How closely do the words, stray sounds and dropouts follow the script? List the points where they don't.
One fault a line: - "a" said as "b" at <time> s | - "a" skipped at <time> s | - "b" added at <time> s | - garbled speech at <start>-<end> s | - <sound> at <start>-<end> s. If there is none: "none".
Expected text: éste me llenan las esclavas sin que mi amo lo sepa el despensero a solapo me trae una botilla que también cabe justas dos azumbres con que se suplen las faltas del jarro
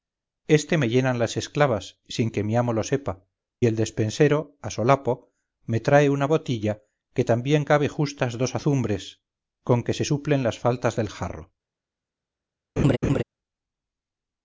- laugh at 12.8-13.2 s